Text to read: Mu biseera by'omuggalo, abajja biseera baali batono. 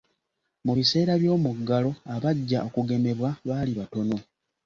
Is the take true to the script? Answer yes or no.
no